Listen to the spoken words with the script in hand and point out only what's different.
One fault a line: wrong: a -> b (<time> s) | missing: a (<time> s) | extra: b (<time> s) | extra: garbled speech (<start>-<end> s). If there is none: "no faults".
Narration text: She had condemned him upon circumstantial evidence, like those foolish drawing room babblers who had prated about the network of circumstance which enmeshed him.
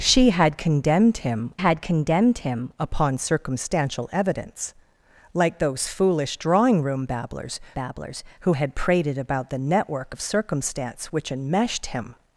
extra: had condemned him (1.6 s)
extra: babblers (7.7 s)